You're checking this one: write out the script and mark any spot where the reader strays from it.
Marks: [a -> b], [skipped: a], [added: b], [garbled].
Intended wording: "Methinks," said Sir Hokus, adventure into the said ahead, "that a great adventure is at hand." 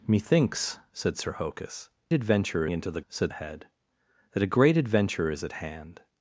"Methinks," said Sir Hokus, adventure into the said ahead, "that a great adventure is at hand."